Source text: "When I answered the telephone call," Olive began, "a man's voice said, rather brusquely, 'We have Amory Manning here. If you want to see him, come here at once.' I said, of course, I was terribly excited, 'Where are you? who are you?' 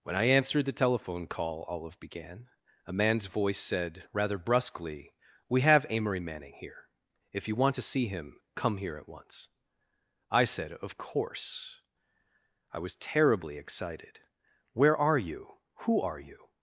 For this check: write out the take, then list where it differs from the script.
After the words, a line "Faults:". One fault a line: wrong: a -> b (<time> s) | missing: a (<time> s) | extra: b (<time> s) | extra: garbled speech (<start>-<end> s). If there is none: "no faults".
"When I answered the telephone call," Olive began, "a man's voice said, rather brusquely, 'We have Amory Manning here. If you want to see him, come here at once.' I said, of course, I was terribly excited, 'Where are you? who are you?'
Faults:
no faults